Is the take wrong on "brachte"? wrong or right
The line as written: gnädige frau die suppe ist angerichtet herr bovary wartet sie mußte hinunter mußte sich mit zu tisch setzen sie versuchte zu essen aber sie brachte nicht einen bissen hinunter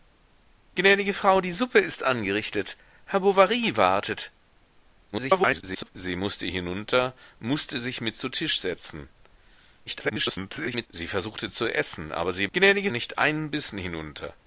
wrong